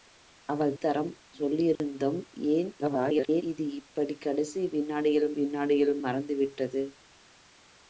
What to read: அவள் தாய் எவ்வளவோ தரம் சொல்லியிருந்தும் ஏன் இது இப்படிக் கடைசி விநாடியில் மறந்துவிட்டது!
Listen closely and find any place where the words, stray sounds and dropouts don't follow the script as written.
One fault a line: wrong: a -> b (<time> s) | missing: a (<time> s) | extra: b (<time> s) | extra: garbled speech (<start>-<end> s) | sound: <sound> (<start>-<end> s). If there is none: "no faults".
missing: தாய் எவ்வளவோ (0.7 s)
sound: dropout (1.8-1.8 s)
extra: garbled speech (2.8-3.4 s)
extra: விநாடியில் (5.4 s)